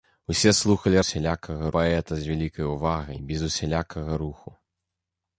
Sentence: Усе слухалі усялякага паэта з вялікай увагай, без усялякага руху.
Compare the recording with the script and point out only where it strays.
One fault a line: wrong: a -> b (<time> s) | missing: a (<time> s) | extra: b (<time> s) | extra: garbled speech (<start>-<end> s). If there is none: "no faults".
no faults